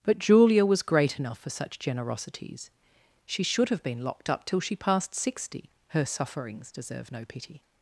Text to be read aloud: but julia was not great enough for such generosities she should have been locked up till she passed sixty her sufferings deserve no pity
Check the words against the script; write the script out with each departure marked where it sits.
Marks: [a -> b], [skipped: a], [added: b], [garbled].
but julia was [skipped: not] great enough for such generosities she should have been locked up till she passed sixty her sufferings deserve no pity